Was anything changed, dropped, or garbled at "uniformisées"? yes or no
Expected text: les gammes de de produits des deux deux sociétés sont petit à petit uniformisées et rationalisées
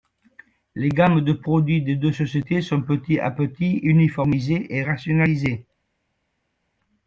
no